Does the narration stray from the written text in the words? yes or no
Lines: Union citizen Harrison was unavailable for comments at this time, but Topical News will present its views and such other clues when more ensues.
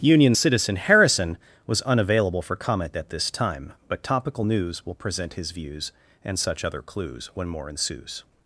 yes